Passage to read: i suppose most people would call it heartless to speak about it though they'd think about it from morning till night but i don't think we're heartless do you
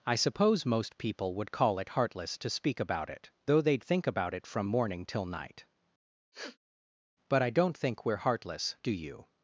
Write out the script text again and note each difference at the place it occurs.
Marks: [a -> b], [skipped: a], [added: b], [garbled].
i suppose most people would call it heartless to speak about it though they'd think about it from morning till night but i don't think we're heartless do you